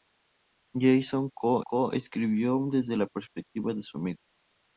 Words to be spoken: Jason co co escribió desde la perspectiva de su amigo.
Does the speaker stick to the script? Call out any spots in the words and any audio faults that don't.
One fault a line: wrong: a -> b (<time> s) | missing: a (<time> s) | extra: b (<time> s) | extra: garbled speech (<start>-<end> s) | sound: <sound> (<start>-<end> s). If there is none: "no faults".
no faults